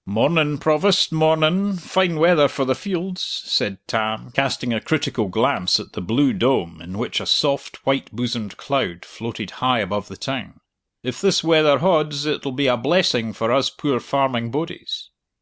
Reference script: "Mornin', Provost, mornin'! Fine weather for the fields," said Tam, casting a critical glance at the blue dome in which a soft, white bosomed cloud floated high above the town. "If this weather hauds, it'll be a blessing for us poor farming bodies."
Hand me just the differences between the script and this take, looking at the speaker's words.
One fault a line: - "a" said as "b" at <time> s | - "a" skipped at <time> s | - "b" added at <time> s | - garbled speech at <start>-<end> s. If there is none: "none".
none